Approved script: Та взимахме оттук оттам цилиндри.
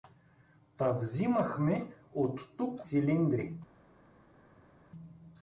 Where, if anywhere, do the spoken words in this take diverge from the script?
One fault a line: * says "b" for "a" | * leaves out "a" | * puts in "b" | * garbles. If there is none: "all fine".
* leaves out "оттам"